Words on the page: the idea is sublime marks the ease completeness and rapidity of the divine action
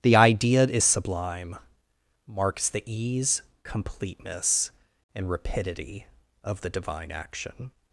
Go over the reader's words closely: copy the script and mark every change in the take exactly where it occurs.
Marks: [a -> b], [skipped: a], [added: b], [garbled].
the idea is sublime marks the ease completeness and rapidity of the divine action